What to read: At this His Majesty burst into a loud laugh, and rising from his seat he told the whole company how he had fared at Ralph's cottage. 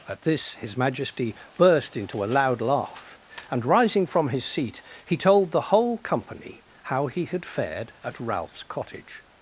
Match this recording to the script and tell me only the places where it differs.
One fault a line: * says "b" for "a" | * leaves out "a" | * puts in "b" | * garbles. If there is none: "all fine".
all fine